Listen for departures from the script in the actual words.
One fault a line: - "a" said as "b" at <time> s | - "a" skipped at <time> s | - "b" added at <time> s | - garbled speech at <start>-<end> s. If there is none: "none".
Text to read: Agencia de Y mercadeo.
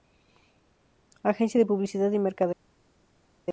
- "Publicidad" added at 1.6 s